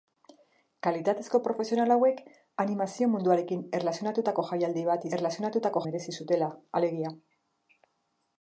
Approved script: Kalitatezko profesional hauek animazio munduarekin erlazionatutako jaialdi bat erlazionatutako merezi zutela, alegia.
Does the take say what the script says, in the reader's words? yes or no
yes